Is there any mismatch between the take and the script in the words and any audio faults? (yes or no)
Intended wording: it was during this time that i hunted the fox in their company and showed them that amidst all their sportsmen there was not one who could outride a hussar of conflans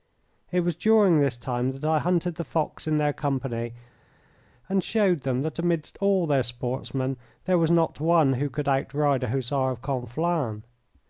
no